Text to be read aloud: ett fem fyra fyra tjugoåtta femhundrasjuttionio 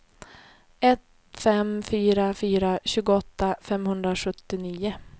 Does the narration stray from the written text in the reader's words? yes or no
no